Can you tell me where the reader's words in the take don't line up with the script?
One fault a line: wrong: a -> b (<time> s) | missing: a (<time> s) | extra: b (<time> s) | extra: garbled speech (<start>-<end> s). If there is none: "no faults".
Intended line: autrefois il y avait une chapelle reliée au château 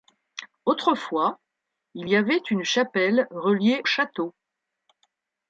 missing: au (3.8 s)